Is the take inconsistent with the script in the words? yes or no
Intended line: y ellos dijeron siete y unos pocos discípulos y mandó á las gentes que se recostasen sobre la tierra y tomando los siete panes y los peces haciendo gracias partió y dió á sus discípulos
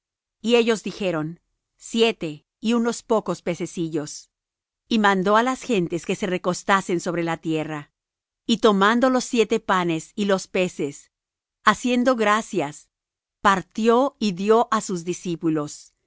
yes